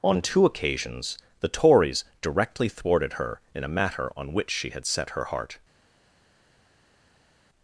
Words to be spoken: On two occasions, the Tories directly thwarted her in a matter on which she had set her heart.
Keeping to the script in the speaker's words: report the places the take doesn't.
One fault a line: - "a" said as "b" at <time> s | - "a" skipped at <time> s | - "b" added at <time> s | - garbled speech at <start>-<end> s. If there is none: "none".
none